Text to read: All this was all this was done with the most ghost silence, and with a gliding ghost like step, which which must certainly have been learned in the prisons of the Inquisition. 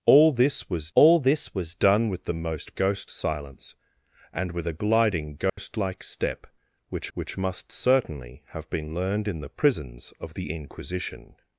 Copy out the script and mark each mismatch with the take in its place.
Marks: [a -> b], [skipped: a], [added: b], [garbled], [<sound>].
All this was all this was done with the most ghost silence, and with a gliding ghost [dropout] like step, which which must certainly have been learned in the prisons of the Inquisition.